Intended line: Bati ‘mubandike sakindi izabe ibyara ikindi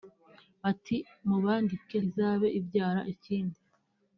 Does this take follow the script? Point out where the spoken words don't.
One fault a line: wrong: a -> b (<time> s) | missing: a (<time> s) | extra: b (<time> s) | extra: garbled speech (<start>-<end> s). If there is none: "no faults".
missing: sakindi (2.0 s)